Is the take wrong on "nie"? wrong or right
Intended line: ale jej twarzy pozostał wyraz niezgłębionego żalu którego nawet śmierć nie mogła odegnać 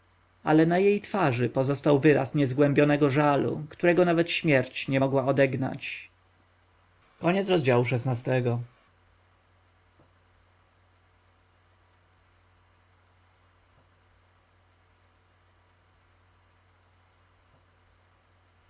right